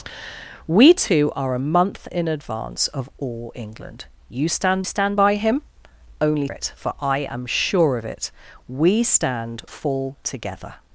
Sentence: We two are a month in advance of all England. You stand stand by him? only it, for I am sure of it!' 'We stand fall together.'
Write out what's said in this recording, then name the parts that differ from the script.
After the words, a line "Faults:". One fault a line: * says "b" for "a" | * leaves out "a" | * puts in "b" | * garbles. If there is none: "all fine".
We two are a month in advance of all England. You stand stand by him? only it, for I am sure of it!' 'We stand fall together.'
Faults:
all fine